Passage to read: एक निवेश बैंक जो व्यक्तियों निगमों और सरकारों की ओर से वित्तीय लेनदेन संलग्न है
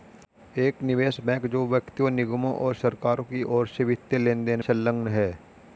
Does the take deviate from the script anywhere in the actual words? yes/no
no